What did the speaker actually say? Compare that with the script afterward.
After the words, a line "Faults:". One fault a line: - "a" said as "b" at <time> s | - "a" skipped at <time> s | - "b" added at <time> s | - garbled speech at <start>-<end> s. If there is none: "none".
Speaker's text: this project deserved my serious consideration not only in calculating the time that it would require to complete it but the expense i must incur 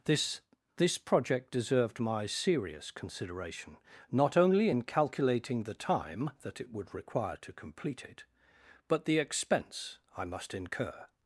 this this project deserved my serious consideration not only in calculating the time that it would require to complete it but the expense i must incur
Faults:
- "this" added at 0.8 s